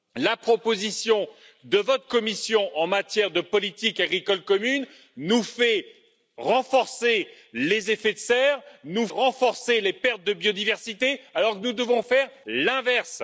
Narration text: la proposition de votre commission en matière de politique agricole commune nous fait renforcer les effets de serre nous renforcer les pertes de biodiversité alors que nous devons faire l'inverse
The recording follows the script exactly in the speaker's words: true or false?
true